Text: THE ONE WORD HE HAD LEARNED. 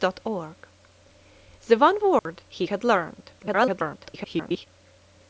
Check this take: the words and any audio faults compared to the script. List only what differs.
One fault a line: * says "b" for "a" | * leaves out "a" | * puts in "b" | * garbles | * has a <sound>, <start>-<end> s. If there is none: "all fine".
* has a dropout, 2.2-2.3 s
* garbles